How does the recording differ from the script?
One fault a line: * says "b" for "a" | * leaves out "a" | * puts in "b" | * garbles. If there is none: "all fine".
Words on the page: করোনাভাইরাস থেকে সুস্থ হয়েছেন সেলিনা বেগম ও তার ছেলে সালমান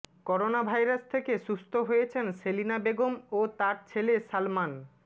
all fine